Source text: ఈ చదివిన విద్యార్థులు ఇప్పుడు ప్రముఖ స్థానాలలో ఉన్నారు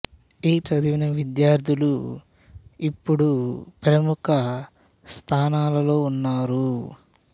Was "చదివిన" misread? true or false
false